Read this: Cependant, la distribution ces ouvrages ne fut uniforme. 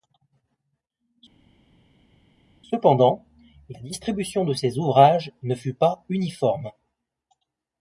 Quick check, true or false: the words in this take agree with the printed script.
false